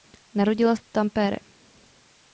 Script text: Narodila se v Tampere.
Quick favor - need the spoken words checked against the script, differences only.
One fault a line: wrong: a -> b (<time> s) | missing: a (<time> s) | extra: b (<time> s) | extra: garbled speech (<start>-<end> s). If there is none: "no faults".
missing: se (0.8 s)